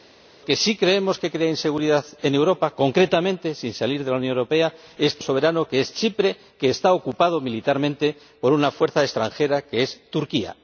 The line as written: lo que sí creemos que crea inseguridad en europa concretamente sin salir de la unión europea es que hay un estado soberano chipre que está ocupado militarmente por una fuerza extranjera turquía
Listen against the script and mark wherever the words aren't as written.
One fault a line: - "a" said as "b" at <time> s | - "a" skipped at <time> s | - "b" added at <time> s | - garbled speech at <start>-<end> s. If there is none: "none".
- "hay un estado" skipped at 5.2 s